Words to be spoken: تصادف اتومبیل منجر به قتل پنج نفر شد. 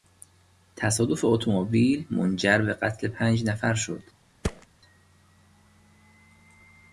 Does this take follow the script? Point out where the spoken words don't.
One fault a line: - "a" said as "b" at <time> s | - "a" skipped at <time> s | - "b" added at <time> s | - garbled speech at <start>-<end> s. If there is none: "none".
none